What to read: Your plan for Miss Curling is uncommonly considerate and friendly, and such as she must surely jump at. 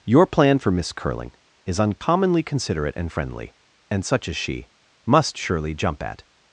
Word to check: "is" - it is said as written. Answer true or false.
true